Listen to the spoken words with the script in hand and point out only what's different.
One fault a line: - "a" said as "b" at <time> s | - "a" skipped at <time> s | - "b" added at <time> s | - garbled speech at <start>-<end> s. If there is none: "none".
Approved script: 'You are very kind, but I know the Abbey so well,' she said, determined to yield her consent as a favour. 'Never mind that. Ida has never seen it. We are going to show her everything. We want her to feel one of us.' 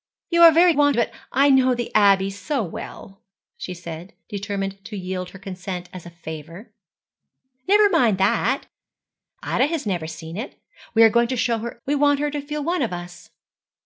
- "kind" said as "want" at 0.7 s
- "everything" skipped at 11.8 s